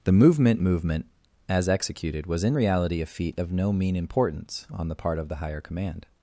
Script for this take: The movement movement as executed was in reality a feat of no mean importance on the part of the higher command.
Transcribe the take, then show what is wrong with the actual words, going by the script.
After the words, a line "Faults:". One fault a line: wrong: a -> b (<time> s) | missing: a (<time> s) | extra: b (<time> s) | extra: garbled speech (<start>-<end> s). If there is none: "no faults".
The movement movement as executed was in reality a feat of no mean importance on the part of the higher command.
Faults:
no faults